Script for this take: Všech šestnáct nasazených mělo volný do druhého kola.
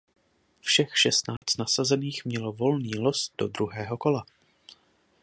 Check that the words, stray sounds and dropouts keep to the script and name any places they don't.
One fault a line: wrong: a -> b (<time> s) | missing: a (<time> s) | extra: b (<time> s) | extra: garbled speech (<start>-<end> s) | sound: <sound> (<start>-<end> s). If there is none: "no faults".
sound: dropout (1.4-1.4 s)
extra: los (3.0 s)